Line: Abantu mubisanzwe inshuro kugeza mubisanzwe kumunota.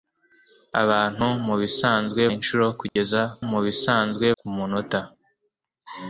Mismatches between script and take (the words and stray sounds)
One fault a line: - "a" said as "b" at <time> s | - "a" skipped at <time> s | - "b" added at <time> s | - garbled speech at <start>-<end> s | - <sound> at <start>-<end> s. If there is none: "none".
- dropout at 2.9-3.0 s